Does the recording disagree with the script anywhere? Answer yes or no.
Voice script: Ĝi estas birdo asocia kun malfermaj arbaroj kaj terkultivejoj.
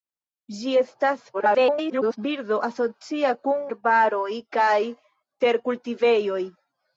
yes